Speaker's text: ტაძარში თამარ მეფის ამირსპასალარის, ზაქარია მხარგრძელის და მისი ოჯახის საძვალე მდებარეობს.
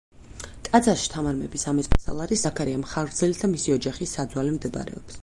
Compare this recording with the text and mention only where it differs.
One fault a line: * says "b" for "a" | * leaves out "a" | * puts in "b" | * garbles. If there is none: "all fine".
all fine